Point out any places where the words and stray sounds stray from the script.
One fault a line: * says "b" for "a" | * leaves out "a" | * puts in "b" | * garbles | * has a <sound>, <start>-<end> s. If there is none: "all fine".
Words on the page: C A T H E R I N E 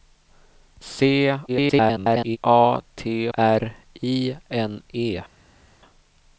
* garbles
* leaves out "H E"